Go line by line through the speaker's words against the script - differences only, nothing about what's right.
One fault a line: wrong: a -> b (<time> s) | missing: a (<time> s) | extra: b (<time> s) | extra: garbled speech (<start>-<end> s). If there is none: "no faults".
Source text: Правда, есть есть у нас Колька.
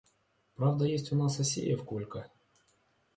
missing: есть (1.1 s)
extra: Асеев (1.4 s)